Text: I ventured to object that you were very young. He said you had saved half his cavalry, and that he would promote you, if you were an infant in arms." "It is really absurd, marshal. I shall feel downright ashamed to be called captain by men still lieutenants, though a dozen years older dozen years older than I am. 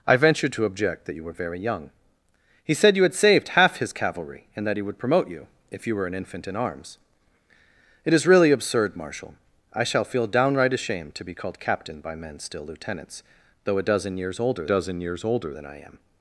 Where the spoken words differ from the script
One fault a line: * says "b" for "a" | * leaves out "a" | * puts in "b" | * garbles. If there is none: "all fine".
all fine